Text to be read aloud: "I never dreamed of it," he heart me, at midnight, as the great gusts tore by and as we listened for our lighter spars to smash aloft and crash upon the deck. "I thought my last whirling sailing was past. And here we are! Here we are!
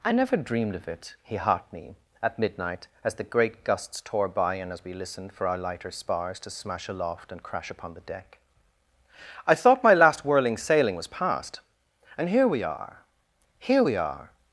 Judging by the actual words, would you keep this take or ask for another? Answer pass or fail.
pass